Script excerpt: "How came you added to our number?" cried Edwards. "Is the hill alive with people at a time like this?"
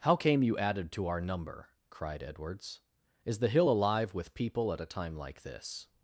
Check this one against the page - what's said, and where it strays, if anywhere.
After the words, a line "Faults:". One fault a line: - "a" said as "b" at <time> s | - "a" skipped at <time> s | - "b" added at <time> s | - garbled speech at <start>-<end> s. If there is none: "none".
"How came you added to our number?" cried Edwards. "Is the hill alive with people at a time like this?"
Faults:
none